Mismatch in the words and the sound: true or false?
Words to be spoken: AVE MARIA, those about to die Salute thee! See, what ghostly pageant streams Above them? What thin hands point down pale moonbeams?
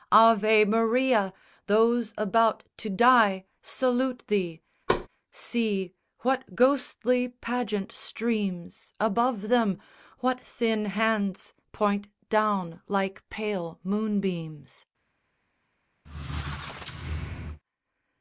true